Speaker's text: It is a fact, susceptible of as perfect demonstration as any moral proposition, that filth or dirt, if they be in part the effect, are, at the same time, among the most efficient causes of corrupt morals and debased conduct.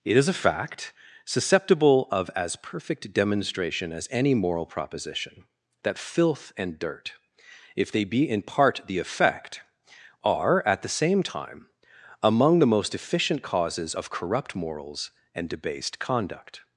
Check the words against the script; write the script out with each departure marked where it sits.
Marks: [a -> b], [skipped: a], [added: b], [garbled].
It is a fact, susceptible of as perfect demonstration as any moral proposition, that filth [or -> and] dirt, if they be in part the effect, are, at the same time, among the most efficient causes of corrupt morals and debased conduct.